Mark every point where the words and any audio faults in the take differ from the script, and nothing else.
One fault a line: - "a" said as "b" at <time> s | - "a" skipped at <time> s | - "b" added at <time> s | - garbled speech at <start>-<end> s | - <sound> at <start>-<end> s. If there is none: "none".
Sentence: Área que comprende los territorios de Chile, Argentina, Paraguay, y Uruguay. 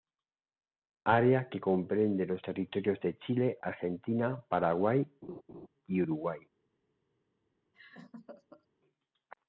- laugh at 5.2-5.7 s
- laugh at 7.7-8.7 s